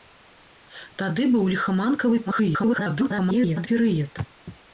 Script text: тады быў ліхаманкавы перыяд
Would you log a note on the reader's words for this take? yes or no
yes